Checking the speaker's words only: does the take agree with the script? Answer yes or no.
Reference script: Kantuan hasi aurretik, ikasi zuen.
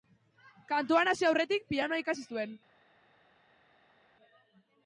no